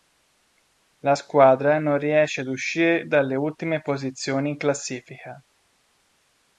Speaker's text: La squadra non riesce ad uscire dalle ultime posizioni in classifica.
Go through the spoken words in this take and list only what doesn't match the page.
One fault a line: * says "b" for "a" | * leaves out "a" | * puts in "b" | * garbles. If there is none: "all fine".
all fine